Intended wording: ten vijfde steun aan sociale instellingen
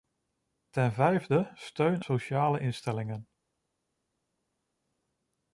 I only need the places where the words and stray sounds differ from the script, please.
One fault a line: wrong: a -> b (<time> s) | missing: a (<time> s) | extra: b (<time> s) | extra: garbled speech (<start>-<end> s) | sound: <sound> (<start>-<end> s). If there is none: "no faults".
missing: aan (2.0 s)